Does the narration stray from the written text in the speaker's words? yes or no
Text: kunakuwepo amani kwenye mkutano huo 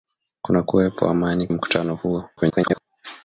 yes